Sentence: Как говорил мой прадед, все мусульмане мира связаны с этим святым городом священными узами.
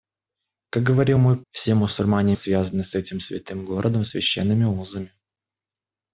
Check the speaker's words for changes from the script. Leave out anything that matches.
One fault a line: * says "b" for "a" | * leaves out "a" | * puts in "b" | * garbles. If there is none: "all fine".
* leaves out "прадед"
* leaves out "мира"